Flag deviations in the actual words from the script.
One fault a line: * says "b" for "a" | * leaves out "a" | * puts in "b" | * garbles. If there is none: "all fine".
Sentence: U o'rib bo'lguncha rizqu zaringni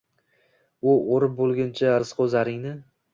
all fine